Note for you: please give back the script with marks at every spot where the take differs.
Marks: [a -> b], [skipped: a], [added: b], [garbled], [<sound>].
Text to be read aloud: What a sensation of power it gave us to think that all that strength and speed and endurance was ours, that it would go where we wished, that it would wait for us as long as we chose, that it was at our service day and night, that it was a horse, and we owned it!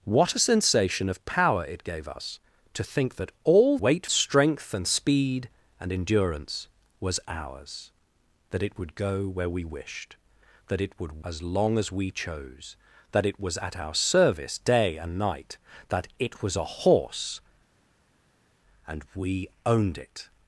What a sensation of power it gave us to think that all [that -> wait] strength and speed and endurance was ours, that it would go where we wished, that it would [skipped: wait for us] as long as we chose, that it was at our service day and night, that it was a horse, and we owned it!